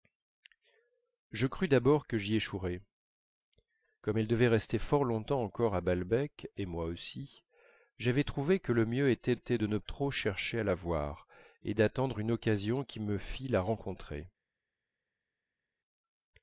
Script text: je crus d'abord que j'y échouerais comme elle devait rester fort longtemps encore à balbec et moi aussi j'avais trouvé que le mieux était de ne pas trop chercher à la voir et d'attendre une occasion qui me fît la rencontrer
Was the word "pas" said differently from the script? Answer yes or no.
yes